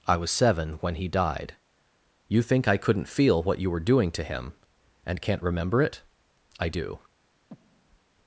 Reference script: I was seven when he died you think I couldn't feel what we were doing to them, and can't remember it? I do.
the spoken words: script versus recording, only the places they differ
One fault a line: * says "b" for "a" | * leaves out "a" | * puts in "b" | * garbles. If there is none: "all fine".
* says "you" for "we"
* says "him" for "them"